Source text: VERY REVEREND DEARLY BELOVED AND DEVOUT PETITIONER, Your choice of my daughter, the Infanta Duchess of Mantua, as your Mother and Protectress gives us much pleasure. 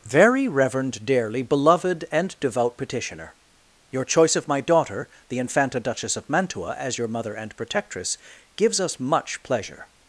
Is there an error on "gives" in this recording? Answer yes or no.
no